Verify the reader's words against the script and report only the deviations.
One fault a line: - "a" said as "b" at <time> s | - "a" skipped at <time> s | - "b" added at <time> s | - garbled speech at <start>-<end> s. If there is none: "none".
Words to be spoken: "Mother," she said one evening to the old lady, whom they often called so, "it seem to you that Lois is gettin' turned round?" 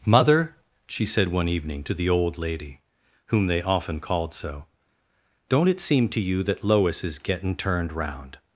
- "don't" added at 5.5 s